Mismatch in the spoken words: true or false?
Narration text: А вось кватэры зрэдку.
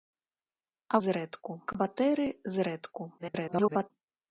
true